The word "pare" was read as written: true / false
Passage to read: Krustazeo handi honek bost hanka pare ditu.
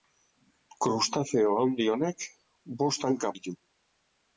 false